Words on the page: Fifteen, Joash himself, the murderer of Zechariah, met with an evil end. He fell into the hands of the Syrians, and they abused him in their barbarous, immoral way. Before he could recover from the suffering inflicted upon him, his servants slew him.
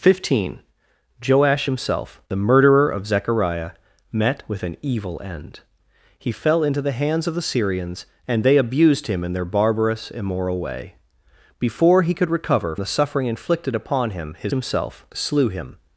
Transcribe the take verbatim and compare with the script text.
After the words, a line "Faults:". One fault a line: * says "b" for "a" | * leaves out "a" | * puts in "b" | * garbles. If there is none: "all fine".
Fifteen, Joash himself, the murderer of Zechariah, met with an evil end. He fell into the hands of the Syrians, and they abused him in their barbarous, immoral way. Before he could recover the suffering inflicted upon him, his himself slew him.
Faults:
* leaves out "from"
* says "himself" for "servants"